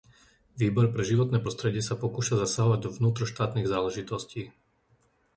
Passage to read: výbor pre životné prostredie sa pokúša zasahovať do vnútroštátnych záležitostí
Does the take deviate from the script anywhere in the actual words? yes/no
no